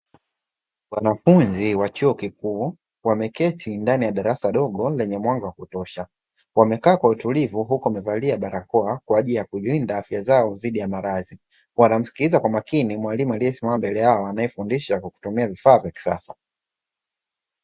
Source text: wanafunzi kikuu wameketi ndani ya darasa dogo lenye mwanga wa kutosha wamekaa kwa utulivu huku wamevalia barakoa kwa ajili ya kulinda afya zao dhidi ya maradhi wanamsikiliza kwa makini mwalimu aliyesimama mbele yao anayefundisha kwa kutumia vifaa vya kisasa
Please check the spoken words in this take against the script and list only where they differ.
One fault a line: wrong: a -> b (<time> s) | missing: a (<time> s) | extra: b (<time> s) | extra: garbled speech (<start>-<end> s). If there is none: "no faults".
extra: wa chuo (1.7 s)